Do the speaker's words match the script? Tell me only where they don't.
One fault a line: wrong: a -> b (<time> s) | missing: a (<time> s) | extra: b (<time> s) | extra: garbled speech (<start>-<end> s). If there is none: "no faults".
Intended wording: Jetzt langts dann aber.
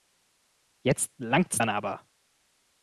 no faults